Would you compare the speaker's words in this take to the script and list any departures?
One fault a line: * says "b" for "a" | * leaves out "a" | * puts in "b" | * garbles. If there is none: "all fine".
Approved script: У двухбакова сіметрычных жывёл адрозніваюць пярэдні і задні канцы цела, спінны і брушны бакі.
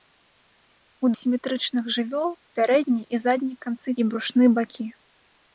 * leaves out "двухбакова"
* leaves out "адрозніваюць"
* leaves out "цела спінны"